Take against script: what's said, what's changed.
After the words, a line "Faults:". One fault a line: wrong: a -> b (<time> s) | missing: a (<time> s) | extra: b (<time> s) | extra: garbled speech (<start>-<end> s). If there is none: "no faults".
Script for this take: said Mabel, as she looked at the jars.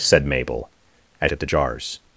said Mabel, as at the jars.
Faults:
missing: she looked (1.3 s)